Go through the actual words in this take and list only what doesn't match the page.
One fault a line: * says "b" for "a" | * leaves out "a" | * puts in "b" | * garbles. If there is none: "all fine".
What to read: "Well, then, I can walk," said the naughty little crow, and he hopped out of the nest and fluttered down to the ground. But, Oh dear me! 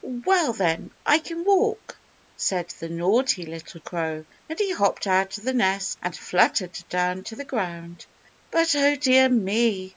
all fine